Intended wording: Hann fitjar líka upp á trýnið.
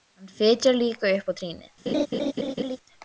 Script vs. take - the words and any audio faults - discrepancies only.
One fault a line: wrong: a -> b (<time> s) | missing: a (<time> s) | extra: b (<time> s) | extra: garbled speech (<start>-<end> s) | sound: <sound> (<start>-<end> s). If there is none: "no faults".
sound: laugh (1.9-2.8 s)